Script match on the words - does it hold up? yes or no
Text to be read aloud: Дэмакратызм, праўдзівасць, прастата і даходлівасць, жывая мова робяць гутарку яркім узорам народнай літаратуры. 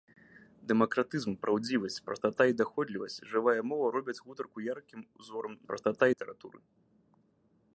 no